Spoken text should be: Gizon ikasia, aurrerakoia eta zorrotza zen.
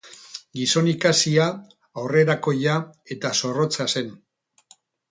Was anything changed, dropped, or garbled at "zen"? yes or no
no